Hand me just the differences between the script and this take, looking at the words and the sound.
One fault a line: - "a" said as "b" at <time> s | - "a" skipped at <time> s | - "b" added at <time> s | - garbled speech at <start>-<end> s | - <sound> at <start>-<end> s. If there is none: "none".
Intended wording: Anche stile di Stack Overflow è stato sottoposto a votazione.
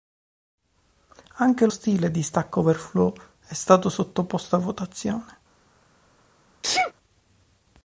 - sneeze at 6.6-6.9 s